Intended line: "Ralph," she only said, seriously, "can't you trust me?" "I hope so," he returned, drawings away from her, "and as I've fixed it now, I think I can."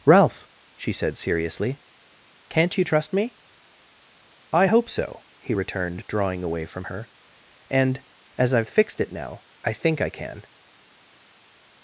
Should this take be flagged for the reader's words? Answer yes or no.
yes